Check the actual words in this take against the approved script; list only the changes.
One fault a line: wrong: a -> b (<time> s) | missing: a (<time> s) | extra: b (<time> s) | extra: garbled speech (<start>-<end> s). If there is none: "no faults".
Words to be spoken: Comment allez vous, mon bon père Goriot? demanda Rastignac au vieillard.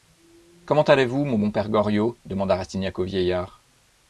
no faults